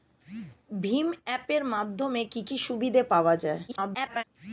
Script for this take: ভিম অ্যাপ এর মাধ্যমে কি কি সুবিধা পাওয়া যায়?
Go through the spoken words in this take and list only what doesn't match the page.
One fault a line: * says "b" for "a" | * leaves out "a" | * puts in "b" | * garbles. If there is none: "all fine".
* garbles